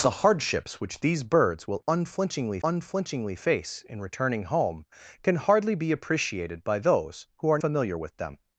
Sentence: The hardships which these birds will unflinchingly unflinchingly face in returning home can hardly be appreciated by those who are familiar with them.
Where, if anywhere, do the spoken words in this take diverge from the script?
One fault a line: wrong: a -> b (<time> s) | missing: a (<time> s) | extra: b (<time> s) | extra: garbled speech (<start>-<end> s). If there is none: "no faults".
no faults